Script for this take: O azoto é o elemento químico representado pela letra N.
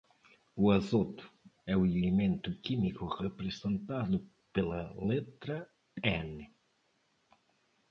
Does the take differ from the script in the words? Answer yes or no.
no